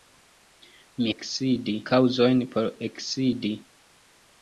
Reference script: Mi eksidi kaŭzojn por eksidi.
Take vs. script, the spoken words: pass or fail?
pass